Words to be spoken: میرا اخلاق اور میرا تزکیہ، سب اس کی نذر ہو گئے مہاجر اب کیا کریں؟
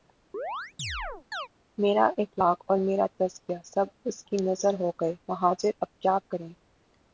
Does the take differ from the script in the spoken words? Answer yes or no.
no